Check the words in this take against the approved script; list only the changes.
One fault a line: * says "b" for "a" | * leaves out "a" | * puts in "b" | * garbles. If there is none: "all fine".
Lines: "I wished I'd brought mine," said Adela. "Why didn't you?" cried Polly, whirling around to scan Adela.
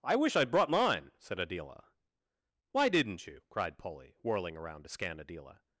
* says "wish" for "wished"